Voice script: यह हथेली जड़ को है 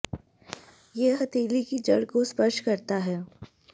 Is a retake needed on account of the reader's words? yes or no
yes